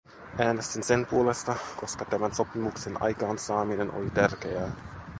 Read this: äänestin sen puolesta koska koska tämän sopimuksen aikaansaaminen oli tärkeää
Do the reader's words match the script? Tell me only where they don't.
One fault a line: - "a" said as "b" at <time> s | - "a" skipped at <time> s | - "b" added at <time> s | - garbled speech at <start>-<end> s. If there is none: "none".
- "koska" skipped at 2.0 s